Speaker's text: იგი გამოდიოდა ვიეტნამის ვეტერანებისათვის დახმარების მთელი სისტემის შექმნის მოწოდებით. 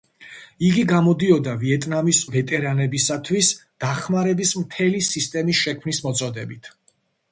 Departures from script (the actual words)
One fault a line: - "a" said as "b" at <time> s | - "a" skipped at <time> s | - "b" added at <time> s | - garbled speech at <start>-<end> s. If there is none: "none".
none